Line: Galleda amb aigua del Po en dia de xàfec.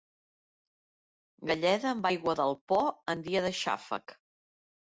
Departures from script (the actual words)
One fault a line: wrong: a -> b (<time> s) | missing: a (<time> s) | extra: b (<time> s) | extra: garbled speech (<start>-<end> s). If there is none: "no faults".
no faults